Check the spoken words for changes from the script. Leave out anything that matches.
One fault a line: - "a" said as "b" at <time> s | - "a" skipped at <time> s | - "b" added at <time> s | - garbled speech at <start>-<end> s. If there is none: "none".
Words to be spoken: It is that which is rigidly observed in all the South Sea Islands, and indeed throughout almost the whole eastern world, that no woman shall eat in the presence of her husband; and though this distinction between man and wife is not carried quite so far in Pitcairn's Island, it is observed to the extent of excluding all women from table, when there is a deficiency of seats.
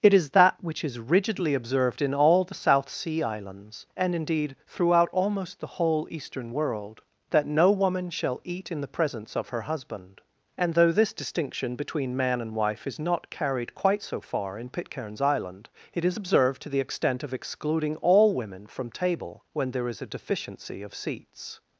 none